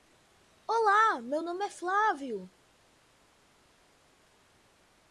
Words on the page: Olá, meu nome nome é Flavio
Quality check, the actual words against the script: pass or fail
fail